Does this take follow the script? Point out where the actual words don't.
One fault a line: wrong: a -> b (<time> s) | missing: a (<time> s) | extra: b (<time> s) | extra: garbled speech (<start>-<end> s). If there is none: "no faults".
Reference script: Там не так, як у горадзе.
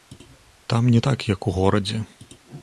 no faults